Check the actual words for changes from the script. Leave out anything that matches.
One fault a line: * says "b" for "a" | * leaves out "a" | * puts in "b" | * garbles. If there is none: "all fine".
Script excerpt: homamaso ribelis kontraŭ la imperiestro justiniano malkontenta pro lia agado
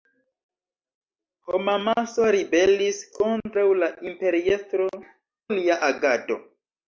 * leaves out "justiniano malkontenta pro"